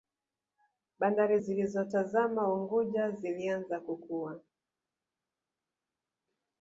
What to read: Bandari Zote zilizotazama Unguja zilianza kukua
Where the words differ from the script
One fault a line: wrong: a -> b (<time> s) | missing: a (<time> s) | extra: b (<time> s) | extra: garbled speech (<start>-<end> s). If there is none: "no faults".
missing: Zote (1.4 s)